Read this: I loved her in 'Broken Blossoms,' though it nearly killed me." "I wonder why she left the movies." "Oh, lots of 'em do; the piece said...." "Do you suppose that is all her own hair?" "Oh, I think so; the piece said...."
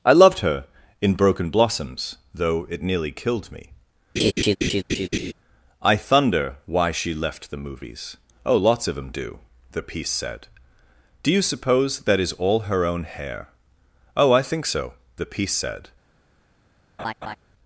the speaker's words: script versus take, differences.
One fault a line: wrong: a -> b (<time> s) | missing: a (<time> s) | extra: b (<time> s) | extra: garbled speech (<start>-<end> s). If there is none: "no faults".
wrong: wonder -> thunder (6.0 s)